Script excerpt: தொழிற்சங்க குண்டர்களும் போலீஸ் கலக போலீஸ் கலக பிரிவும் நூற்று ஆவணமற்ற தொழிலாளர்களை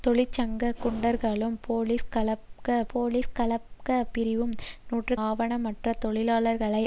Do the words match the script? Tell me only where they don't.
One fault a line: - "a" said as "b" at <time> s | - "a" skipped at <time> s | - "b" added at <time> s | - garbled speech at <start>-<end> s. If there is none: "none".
none